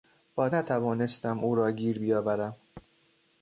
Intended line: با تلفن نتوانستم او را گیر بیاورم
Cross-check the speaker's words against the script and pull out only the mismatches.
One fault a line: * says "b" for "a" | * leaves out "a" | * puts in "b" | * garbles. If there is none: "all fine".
* leaves out "تلفن"